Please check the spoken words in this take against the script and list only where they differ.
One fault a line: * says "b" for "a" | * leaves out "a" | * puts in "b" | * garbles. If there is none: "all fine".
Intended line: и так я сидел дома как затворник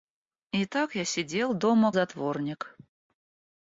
* leaves out "как"